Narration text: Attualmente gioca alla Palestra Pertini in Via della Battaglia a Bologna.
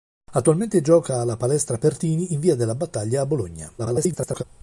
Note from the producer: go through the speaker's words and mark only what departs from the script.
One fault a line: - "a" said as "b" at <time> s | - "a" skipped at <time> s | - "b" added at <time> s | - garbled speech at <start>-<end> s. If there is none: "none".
- garbled speech at 3.8-4.4 s